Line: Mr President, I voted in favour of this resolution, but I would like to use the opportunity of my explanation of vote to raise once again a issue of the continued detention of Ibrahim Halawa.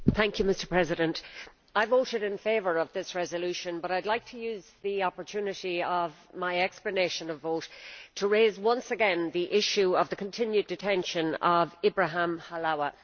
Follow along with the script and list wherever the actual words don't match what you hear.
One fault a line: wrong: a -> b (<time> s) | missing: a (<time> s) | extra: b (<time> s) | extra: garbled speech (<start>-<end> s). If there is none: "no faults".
wrong: a -> the (9.3 s)